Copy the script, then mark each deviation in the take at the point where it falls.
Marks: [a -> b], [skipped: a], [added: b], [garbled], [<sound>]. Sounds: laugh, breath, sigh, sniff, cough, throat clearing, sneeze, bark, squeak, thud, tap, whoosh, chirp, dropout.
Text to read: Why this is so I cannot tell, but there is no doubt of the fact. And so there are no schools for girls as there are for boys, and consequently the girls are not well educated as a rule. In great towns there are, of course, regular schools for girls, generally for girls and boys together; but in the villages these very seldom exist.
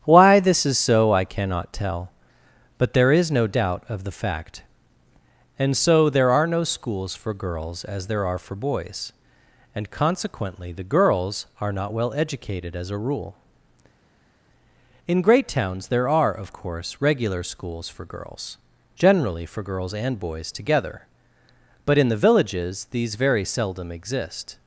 Why this is so I cannot tell, but there is no doubt of the fact. And so there are no schools for girls as there are for boys, and consequently the girls are not well educated as a rule. In great towns there are, of course, regular schools for girls, generally for girls and boys together; but in the villages these very seldom exist.